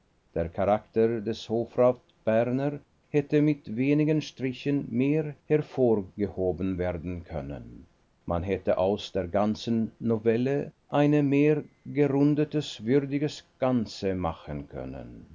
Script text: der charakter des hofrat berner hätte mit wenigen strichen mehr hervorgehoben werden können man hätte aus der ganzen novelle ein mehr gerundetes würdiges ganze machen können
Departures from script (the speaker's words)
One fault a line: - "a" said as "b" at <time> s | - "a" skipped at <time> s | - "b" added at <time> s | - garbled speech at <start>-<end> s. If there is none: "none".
none